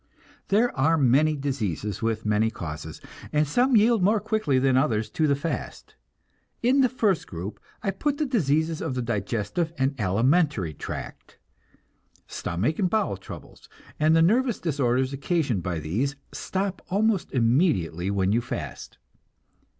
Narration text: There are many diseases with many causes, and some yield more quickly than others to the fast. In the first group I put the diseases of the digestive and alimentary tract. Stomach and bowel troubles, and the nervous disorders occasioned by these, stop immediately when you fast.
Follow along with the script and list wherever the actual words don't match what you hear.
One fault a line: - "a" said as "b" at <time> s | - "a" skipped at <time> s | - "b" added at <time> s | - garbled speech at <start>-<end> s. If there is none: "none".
- "almost" added at 16.9 s